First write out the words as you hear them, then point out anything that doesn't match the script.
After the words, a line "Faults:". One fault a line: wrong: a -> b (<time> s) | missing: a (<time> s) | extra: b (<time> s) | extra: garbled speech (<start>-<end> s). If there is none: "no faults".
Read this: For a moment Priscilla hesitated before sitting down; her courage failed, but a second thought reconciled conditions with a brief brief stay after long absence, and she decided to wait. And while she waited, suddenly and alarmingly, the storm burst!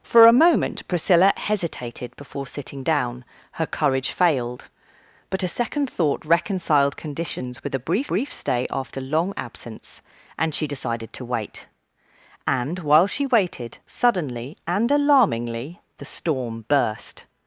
For a moment Priscilla hesitated before sitting down; her courage failed, but a second thought reconciled conditions with a brief brief stay after long absence, and she decided to wait. And while she waited, suddenly and alarmingly, the storm burst!
Faults:
no faults